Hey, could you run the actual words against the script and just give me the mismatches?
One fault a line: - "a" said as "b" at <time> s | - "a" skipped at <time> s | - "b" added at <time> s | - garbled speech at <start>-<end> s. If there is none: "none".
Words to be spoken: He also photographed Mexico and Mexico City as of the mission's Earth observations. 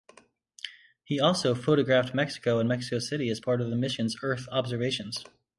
- "part" added at 3.4 s